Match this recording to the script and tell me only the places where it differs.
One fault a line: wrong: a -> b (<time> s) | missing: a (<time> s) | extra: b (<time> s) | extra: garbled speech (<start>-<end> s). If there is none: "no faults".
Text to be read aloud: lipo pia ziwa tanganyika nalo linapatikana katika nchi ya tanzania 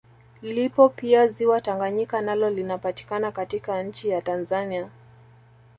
no faults